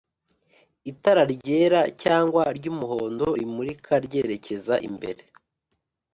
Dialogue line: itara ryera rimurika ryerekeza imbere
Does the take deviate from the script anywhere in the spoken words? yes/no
yes